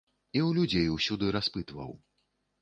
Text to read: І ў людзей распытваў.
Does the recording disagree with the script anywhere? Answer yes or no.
yes